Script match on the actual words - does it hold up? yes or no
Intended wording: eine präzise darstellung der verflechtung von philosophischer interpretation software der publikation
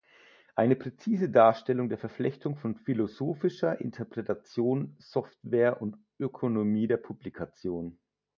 no